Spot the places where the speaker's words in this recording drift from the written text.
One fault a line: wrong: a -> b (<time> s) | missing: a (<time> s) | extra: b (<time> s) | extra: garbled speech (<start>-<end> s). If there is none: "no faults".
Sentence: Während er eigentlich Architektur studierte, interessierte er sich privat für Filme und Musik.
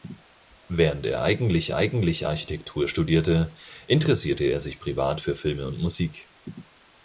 extra: eigentlich (1.7 s)